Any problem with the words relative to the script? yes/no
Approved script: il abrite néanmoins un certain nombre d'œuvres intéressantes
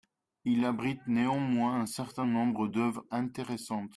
no